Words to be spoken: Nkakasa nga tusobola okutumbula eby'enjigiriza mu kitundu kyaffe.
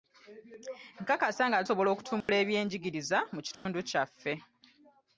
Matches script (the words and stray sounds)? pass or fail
fail